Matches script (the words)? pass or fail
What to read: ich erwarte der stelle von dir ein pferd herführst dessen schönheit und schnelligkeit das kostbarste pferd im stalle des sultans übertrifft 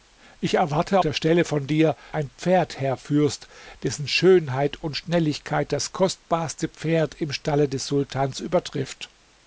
pass